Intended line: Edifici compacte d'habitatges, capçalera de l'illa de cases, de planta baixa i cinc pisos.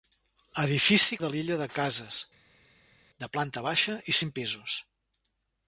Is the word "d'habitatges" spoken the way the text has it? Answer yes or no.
no